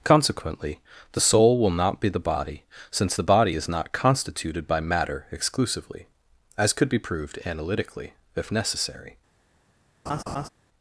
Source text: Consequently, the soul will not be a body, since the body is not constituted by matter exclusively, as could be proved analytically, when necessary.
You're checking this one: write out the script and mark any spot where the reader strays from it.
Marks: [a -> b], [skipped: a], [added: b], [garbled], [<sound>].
Consequently, the soul will not be [a -> the] body, since the body is not constituted by matter exclusively, as could be proved analytically, [when -> if] necessary. [laugh]